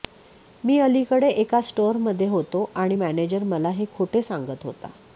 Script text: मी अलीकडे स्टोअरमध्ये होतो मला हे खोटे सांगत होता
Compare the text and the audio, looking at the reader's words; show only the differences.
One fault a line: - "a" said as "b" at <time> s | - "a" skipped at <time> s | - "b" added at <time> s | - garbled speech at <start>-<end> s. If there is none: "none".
- "एका" added at 1.3 s
- "आणि मॅनेजर" added at 2.8 s